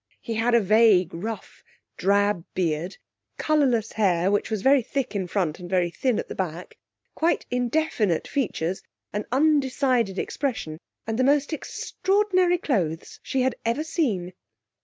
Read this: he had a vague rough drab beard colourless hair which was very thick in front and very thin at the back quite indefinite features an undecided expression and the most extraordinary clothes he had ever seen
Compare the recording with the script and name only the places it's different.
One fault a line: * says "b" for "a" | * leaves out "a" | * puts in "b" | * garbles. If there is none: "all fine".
* says "she" for "he"